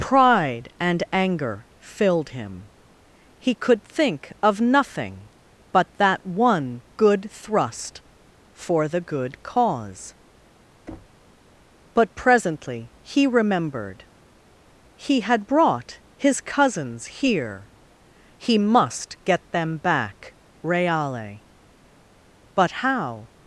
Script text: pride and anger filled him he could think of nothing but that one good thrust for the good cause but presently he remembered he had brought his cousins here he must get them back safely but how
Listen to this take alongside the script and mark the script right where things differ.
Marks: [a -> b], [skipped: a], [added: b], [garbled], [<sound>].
pride and anger filled him he could think of nothing but that one good thrust for the good cause [thud] but presently he remembered he had brought his cousins here he must get them back [safely -> reale] but how